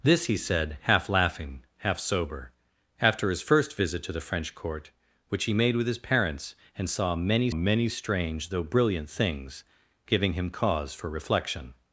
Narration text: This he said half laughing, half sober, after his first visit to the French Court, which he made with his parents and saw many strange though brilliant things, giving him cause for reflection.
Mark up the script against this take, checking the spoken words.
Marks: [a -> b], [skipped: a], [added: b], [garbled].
This he said half laughing, half sober, after his first visit to the French Court, which he made with his parents and saw many [added: many] strange though brilliant things, giving him cause for reflection.